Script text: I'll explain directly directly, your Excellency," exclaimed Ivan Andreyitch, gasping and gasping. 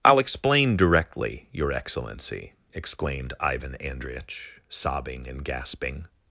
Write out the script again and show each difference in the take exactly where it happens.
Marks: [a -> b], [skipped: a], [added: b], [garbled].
I'll explain directly [skipped: directly,] your Excellency," exclaimed Ivan Andreyitch, [gasping -> sobbing] and gasping.